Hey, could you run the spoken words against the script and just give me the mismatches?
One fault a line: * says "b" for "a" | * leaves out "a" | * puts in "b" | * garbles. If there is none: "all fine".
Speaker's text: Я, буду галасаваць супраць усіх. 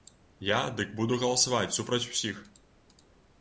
* puts in "дык"